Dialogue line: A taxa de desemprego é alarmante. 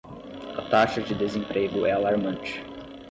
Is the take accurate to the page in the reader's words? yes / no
yes